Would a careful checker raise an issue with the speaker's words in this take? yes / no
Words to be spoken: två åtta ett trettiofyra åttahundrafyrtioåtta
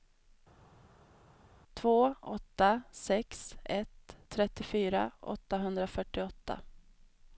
yes